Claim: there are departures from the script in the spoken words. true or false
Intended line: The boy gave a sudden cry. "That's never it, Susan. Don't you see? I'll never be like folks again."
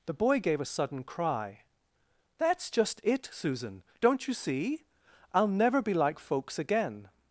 true